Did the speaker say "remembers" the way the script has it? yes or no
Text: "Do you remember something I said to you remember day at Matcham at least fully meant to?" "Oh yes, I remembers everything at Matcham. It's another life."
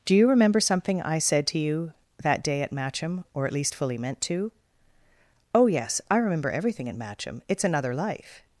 no